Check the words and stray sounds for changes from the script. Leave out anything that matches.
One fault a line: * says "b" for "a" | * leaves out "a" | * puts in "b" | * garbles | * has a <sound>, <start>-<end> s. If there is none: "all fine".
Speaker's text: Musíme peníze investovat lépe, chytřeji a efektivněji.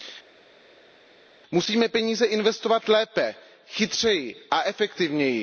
all fine